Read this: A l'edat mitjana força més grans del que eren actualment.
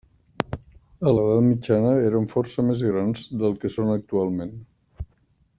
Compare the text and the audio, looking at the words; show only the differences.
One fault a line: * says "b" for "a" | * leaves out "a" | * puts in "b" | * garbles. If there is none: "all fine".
* puts in "eren"
* says "són" for "eren"